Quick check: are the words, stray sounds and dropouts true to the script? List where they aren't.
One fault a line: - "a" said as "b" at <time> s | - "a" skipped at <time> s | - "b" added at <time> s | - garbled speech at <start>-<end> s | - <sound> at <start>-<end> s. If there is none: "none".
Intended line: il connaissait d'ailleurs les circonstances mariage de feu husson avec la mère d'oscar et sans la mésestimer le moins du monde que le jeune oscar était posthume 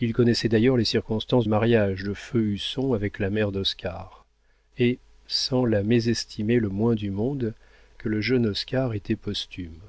none